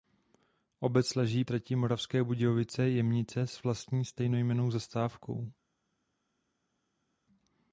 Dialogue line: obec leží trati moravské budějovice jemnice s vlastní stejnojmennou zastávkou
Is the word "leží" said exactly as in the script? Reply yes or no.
yes